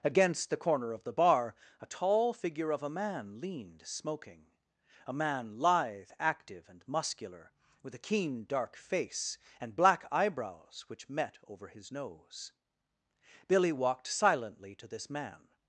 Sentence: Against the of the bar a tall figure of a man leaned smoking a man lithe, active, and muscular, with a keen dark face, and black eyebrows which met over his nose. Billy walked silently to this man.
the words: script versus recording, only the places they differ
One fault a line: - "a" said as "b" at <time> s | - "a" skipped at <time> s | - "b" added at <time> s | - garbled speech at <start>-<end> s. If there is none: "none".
- "corner" added at 0.6 s